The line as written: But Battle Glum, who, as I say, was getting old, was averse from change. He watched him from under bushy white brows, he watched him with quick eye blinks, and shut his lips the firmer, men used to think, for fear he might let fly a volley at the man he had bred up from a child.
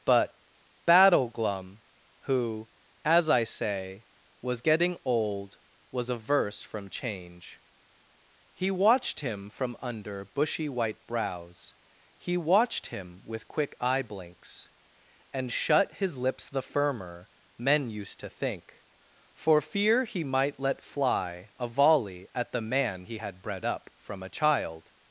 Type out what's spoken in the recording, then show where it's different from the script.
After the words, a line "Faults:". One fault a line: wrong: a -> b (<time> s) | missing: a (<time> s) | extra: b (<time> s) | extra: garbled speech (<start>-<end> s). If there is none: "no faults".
But Battle Glum, who, as I say, was getting old, was averse from change. He watched him from under bushy white brows, he watched him with quick eye blinks, and shut his lips the firmer, men used to think, for fear he might let fly a volley at the man he had bred up from a child.
Faults:
no faults